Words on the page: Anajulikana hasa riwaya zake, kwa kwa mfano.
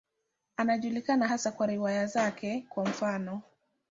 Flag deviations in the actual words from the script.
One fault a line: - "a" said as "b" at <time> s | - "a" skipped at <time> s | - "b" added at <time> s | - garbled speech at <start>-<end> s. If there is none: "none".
- "kwa" added at 1.5 s
- "kwa" skipped at 2.8 s